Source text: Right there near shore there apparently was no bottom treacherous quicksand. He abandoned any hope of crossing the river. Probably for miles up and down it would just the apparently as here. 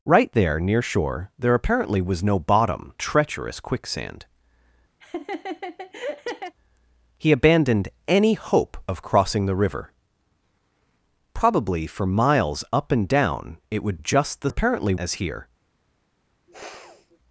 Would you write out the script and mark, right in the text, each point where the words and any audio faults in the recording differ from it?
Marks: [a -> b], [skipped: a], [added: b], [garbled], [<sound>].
Right there near shore there apparently was no bottom treacherous quicksand. [laugh] He abandoned any hope of crossing the river. Probably for miles up and down it would just the apparently as here. [sniff]